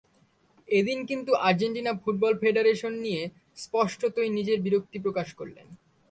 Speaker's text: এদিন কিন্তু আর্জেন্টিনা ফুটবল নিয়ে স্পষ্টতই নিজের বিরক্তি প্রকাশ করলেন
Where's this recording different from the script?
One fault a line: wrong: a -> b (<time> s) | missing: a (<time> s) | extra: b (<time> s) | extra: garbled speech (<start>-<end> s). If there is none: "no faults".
extra: ফেডারেশন (2.4 s)